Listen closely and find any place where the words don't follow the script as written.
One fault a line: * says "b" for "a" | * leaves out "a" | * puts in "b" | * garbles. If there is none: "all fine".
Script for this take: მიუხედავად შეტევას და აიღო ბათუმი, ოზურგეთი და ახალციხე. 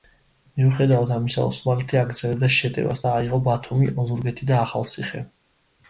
* puts in "ამისა ოსმალეთი აგრძელებდა"